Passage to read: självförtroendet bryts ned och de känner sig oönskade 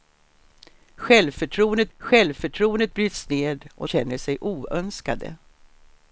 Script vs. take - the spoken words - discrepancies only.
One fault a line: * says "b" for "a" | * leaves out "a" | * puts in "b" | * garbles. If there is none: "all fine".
* puts in "självförtroendet"
* leaves out "de"